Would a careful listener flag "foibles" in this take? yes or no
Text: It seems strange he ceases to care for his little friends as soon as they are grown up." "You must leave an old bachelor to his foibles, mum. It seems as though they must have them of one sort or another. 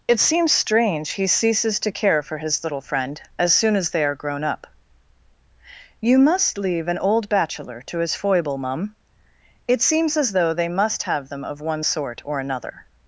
yes